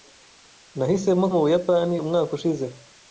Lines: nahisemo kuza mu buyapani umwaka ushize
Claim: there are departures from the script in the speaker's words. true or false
true